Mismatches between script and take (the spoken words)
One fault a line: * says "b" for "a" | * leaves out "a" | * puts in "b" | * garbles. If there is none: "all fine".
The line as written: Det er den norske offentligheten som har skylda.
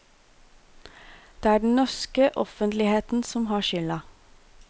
all fine